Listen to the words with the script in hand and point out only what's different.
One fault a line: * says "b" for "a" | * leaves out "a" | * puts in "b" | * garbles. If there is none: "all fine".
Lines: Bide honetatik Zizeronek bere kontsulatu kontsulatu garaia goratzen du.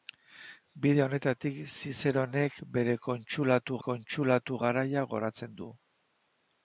all fine